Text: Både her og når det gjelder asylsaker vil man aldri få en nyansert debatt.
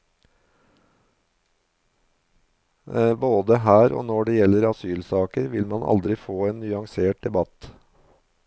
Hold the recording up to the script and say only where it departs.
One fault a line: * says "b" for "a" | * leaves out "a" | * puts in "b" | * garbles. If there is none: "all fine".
all fine